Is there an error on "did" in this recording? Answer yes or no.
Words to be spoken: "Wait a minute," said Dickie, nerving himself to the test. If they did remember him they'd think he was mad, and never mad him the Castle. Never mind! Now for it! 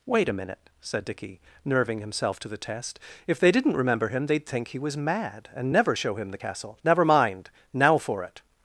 yes